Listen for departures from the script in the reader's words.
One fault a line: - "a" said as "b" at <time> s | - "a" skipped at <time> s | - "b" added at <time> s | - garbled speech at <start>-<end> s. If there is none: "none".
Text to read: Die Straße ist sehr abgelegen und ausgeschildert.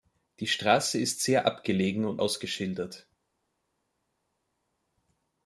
none